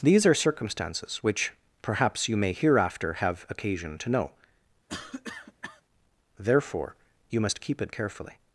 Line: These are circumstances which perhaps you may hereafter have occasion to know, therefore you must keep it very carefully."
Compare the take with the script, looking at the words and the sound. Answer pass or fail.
fail